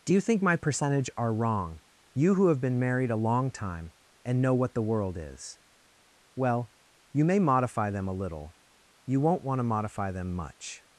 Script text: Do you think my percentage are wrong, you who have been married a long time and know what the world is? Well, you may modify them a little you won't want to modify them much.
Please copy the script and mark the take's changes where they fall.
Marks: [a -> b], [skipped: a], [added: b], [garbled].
Do you think my percentage are wrong, you who have been married a long time and know what the world is? Well, you may modify them a little you won't want to modify them much.